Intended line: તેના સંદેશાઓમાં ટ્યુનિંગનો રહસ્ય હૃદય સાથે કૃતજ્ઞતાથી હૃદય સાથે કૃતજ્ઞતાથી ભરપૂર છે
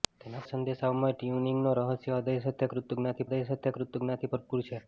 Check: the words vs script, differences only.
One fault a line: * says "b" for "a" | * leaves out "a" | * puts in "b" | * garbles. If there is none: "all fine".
all fine